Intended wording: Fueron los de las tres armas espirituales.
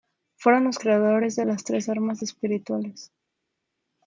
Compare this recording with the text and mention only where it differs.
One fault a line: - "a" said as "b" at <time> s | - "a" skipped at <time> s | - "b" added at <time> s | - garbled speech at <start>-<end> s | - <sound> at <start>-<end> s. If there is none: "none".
- "creadores" added at 0.8 s